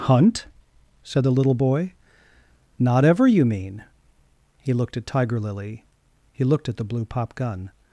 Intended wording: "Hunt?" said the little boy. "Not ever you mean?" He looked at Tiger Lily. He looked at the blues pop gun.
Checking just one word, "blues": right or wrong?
wrong